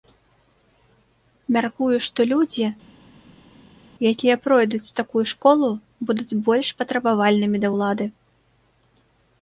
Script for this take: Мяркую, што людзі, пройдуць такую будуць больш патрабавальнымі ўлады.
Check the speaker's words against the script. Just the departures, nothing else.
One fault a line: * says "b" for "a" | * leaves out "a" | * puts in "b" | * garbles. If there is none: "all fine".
* puts in "якія"
* puts in "школу"
* puts in "да"